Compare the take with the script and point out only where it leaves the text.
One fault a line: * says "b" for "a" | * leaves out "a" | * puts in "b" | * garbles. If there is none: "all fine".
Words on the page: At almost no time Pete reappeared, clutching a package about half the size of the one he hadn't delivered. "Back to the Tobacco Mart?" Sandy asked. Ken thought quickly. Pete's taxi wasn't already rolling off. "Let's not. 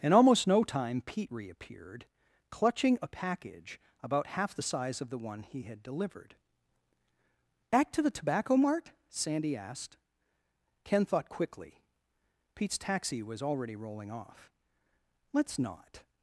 * says "In" for "At"
* says "had" for "hadn't"
* says "was" for "wasn't"